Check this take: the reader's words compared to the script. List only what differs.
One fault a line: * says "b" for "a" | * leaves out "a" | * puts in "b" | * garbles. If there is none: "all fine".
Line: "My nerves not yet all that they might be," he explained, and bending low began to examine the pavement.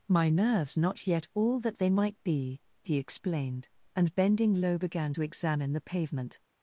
all fine